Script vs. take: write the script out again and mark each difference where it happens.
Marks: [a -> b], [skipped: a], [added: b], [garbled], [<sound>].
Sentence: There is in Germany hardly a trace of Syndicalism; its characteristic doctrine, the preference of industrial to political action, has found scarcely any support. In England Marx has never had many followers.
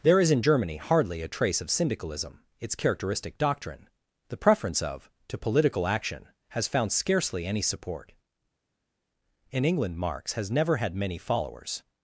There is in Germany hardly a trace of Syndicalism; its characteristic doctrine, the preference of [skipped: industrial] to political action, has found scarcely any support. In England Marx has never had many followers.